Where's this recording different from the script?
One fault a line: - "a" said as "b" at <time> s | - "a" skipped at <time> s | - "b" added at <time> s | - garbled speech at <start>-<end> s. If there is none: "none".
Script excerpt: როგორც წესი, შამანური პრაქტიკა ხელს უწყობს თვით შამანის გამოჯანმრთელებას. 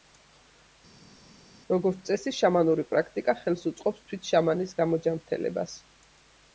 none